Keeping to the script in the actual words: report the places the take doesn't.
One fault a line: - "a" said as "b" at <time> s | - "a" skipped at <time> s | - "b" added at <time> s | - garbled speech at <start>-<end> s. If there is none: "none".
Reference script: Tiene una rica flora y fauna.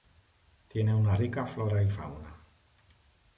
none